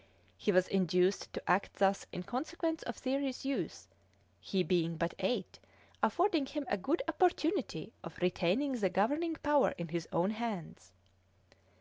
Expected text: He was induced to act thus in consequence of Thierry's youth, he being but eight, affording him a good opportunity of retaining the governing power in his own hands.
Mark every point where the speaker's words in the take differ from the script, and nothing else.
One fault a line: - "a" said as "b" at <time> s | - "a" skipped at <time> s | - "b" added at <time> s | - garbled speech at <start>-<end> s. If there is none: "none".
none